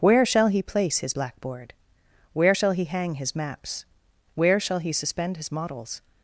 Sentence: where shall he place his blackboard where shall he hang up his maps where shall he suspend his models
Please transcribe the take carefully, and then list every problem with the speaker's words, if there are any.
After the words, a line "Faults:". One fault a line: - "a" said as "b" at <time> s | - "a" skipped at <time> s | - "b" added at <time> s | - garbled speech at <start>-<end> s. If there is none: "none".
where shall he place his blackboard where shall he hang his maps where shall he suspend his models
Faults:
- "up" skipped at 3.1 s